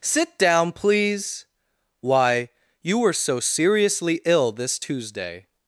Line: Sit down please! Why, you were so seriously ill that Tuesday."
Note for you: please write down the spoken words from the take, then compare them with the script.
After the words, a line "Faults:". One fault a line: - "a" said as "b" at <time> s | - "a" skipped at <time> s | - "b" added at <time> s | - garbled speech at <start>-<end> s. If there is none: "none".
Sit down please! Why, you were so seriously ill this Tuesday."
Faults:
- "that" said as "this" at 4.5 s